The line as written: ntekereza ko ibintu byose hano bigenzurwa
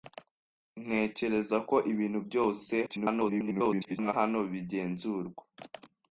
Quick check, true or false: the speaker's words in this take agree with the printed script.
false